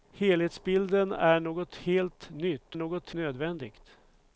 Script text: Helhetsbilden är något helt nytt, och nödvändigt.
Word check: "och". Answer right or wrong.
wrong